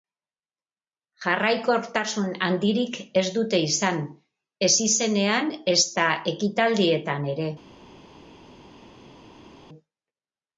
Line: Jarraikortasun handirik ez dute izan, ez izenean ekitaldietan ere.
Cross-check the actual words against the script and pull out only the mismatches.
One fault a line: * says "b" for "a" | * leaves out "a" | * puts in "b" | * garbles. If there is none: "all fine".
* puts in "ezta"